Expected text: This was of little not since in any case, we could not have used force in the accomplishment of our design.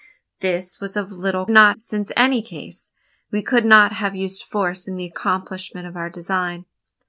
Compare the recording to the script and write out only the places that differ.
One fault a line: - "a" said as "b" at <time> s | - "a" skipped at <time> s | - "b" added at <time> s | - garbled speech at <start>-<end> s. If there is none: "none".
none